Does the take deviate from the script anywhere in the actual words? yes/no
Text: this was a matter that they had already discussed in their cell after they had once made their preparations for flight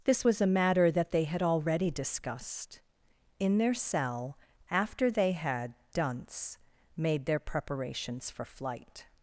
yes